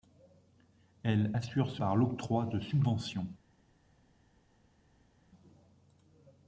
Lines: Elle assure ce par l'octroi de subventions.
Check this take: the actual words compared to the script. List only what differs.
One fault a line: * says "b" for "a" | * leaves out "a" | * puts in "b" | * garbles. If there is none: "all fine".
all fine